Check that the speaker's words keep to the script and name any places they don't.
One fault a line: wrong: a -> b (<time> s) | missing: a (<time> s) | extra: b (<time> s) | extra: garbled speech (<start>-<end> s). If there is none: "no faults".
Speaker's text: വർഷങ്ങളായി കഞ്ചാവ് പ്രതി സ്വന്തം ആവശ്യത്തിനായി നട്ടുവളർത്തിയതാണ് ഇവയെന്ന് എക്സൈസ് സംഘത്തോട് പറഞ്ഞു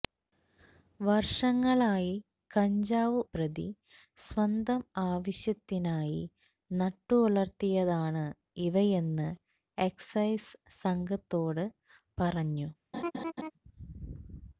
no faults